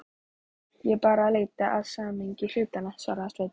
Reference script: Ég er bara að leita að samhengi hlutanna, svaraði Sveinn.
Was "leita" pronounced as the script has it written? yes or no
yes